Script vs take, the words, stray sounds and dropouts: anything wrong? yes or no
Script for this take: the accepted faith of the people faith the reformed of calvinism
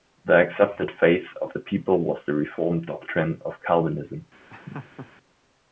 yes